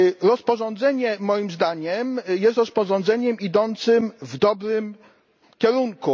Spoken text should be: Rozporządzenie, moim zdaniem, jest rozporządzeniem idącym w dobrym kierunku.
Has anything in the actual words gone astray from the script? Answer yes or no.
no